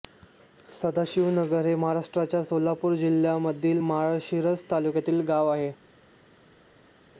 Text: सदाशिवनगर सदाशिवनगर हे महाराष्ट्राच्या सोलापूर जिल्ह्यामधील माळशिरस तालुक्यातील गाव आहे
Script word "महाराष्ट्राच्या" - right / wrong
right